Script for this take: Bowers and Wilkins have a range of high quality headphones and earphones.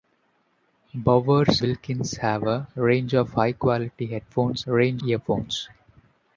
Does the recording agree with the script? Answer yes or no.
no